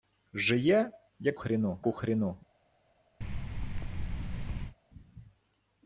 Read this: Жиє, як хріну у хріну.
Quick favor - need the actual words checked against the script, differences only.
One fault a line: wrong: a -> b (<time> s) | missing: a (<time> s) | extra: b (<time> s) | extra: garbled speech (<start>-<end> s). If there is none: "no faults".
no faults